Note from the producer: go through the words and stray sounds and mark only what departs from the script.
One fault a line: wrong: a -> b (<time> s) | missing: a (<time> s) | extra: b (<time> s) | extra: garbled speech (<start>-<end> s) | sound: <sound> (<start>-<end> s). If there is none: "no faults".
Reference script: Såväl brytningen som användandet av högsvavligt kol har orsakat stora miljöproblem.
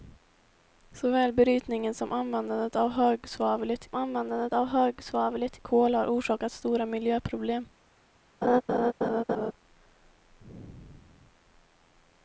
extra: användandet av högsvavligt (3.9 s)
sound: laugh (8.4-9.5 s)